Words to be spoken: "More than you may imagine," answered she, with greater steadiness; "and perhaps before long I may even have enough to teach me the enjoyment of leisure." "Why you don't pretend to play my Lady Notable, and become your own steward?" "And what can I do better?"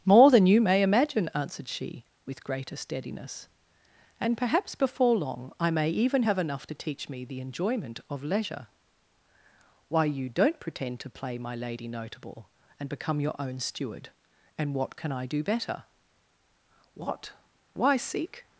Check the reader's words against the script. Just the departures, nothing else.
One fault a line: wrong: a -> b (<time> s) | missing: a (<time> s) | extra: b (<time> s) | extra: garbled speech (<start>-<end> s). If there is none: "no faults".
extra: What Why seek (16.9 s)